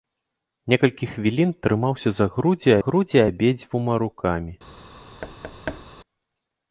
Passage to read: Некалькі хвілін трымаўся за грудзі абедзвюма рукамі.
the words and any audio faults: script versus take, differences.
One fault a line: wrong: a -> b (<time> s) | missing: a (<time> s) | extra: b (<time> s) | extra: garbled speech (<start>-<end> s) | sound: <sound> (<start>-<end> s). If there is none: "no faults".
extra: грудзі (2.9 s)
sound: thud (5.2-5.8 s)